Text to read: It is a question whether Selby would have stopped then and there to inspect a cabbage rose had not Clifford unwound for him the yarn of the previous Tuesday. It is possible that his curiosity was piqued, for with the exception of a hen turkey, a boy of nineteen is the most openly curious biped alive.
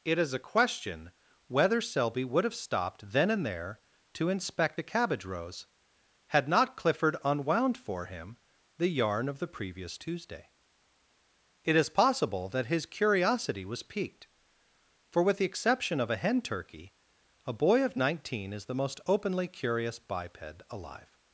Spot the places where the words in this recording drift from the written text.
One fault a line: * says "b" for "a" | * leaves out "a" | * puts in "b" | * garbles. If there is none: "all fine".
all fine